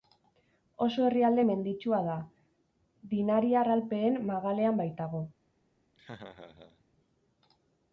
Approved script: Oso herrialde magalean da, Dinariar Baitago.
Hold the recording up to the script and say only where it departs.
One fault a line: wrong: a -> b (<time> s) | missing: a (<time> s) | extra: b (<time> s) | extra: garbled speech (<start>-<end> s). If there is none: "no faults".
wrong: magalean -> menditsua (1.5 s)
extra: Alpeen magalean (3.8 s)